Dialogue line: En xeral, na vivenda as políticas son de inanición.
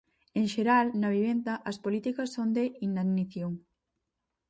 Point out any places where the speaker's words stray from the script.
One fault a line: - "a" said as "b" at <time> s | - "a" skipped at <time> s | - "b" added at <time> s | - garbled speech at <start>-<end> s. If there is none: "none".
none